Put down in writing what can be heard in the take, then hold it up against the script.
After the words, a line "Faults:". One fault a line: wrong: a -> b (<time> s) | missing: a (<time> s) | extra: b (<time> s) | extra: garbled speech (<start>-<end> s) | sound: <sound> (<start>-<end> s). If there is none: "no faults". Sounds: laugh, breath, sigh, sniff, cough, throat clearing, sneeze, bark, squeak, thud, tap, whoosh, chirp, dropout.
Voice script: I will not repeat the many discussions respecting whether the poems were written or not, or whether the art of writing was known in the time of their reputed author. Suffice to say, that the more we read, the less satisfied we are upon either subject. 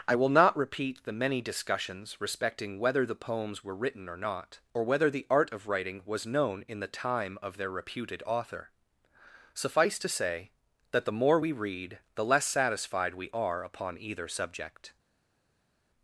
I will not repeat the many discussions respecting whether the poems were written or not, or whether the art of writing was known in the time of their reputed author. Suffice to say, that the more we read, the less satisfied we are upon either subject.
Faults:
no faults